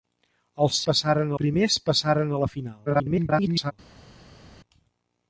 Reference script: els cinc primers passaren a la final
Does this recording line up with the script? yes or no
no